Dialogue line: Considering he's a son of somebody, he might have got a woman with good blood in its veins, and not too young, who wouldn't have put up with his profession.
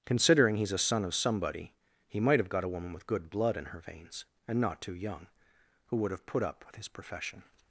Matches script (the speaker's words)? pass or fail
fail